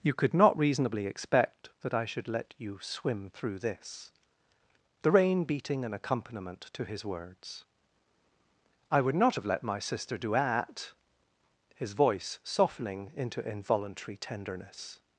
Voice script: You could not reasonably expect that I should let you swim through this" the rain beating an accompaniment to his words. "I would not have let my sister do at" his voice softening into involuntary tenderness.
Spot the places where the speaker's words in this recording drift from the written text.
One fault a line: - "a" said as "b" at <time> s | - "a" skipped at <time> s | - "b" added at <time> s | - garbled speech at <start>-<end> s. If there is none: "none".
none